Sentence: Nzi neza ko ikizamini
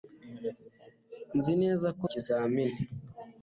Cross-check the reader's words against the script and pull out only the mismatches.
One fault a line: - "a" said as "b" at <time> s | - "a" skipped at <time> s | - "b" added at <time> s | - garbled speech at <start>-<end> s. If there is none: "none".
none